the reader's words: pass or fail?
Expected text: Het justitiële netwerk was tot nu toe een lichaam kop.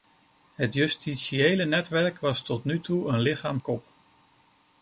pass